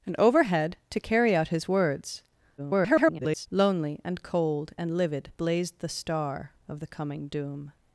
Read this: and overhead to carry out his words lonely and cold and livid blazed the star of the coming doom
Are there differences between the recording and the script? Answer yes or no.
yes